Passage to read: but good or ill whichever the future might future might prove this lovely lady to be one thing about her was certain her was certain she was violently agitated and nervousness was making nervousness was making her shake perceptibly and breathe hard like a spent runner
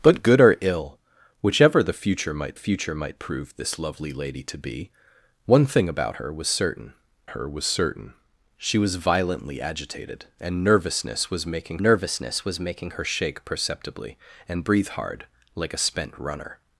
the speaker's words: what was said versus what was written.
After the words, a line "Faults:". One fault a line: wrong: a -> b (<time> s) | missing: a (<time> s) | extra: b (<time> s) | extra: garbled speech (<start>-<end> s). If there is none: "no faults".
but good or ill whichever the future might future might prove this lovely lady to be one thing about her was certain her was certain she was violently agitated and nervousness was making nervousness was making her shake perceptibly and breathe hard like a spent runner
Faults:
no faults